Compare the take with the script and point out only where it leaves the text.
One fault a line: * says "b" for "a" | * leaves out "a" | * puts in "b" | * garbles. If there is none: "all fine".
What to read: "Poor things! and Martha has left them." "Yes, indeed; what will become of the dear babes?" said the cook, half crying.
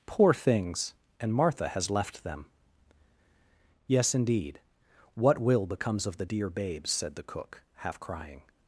* says "becomes" for "become"